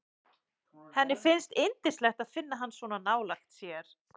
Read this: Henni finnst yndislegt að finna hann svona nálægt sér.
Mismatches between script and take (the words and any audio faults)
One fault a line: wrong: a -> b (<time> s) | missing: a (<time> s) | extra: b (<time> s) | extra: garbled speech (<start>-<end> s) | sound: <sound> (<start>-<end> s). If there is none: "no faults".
no faults